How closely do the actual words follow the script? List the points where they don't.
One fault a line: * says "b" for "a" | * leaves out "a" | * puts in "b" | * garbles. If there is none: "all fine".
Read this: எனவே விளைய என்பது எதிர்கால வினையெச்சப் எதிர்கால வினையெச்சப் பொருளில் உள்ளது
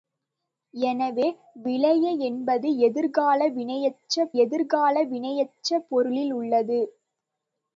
all fine